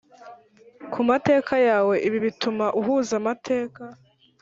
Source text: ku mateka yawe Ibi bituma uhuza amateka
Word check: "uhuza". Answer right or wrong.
right